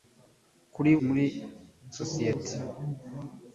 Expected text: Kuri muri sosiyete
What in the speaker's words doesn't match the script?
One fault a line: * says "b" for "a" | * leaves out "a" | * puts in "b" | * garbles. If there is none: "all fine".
all fine